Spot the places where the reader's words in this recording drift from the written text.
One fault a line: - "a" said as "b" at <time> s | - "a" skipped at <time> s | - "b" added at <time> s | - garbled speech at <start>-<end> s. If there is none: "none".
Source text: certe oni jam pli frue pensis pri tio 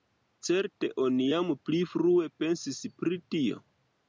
none